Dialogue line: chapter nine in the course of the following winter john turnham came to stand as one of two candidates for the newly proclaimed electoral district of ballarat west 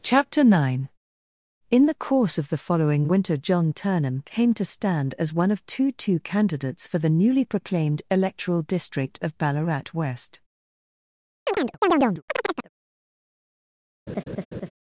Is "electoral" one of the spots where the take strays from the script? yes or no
no